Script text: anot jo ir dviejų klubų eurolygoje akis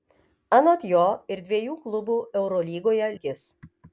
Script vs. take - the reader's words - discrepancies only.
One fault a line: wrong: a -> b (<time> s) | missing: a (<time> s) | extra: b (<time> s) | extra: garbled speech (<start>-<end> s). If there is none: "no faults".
no faults